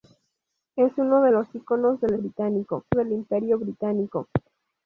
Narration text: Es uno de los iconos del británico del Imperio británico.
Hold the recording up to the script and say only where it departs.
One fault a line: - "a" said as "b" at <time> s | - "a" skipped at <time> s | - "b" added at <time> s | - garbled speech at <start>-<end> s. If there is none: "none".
none